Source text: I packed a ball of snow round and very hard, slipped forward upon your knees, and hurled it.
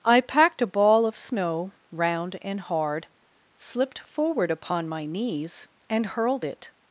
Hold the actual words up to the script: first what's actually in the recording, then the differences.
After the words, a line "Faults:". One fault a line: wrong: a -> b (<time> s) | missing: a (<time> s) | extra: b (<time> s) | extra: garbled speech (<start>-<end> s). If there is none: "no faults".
I packed a ball of snow round and hard, slipped forward upon my knees, and hurled it.
Faults:
missing: very (2.6 s)
wrong: your -> my (4.9 s)